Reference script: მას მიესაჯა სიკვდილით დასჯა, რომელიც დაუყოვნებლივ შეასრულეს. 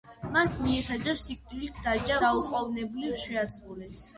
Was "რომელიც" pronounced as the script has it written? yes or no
no